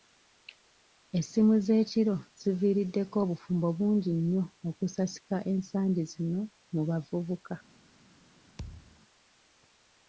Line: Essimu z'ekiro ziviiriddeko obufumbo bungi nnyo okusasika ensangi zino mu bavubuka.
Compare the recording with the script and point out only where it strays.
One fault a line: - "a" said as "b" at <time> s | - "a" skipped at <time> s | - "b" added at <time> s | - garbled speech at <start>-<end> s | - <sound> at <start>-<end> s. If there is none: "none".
- thud at 8.6-9.0 s